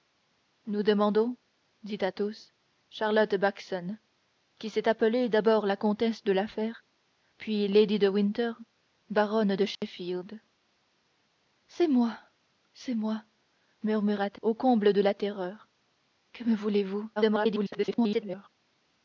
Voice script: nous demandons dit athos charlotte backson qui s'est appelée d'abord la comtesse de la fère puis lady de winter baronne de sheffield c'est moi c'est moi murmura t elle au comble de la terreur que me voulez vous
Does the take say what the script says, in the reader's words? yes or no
no